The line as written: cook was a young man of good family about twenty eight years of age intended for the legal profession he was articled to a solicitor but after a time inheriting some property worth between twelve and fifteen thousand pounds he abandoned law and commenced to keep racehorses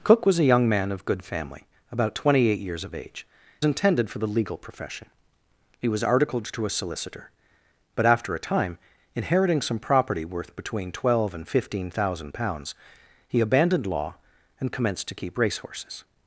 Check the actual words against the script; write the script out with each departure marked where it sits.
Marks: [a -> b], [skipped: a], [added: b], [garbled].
cook was a young man of good family about twenty eight years of age intended for the legal profession he was articled to a solicitor but after a time inheriting some property worth between twelve and fifteen thousand pounds he abandoned law and commenced to keep racehorses